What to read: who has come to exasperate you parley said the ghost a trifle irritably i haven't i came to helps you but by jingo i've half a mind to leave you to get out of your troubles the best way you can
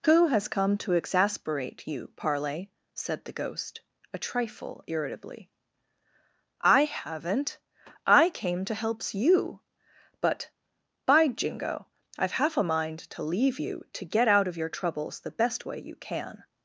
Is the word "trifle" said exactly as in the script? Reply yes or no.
yes